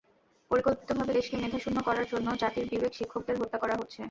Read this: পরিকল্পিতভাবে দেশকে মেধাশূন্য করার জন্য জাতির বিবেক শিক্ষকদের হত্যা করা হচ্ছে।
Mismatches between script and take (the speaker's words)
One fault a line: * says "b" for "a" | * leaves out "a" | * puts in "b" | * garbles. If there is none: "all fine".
all fine